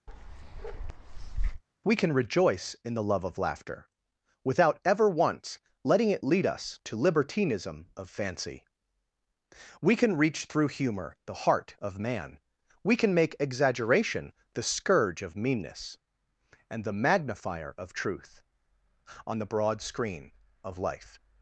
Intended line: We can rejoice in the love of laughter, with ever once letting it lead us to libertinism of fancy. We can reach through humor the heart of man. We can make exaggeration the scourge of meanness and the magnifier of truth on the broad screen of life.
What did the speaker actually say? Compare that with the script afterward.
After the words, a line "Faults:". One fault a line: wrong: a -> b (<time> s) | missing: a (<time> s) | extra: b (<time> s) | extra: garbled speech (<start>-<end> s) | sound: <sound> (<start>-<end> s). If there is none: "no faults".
We can rejoice in the love of laughter, without ever once letting it lead us to libertinism of fancy. We can reach through humor the heart of man. We can make exaggeration the scourge of meanness and the magnifier of truth on the broad screen of life.
Faults:
sound: bark (0.1-1.6 s)
wrong: with -> without (4.4 s)